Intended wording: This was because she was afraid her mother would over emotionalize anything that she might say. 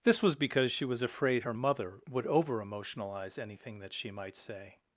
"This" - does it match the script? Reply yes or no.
yes